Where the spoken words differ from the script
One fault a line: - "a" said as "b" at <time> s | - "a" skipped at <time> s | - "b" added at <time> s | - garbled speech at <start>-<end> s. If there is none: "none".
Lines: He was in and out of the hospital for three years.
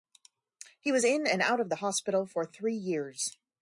none